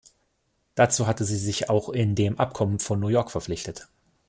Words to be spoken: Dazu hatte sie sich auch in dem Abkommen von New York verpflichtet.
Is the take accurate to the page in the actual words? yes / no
yes